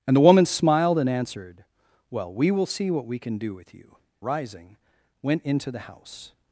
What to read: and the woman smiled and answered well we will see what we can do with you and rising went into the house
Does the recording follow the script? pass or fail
fail